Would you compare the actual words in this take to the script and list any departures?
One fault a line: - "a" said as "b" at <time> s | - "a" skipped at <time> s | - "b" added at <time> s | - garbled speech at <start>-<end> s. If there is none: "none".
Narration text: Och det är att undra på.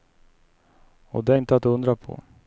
- "inte" added at 1.3 s